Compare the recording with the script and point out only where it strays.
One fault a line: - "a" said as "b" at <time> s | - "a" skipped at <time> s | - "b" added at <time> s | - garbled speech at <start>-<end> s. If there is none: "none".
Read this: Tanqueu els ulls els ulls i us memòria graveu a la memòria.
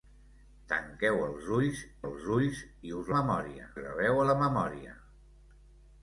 none